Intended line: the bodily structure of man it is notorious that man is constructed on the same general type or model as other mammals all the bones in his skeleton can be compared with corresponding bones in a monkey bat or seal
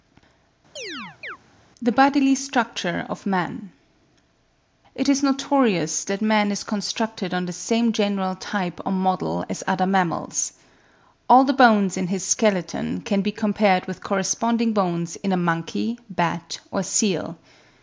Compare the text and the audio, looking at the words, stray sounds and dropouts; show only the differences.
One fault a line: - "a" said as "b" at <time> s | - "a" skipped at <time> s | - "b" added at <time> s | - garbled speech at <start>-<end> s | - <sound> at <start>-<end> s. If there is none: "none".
- chirp at 0.8-1.4 s